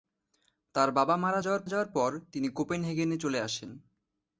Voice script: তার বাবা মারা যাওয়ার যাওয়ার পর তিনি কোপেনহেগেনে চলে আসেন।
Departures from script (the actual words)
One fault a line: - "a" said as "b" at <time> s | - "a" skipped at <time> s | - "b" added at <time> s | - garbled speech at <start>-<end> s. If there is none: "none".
none